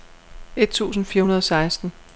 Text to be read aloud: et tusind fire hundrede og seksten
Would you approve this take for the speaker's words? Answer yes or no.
yes